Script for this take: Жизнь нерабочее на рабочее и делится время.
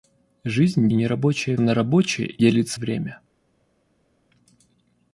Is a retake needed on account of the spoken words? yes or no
no